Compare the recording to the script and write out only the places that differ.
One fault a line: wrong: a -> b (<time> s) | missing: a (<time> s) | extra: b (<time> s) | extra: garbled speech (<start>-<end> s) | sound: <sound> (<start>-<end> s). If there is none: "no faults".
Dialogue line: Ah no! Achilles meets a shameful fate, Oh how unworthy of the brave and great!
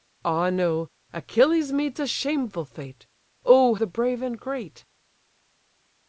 missing: how unworthy of (3.8 s)